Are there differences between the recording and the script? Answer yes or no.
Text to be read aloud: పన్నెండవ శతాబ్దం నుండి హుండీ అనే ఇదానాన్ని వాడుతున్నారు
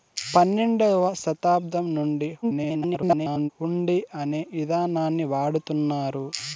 yes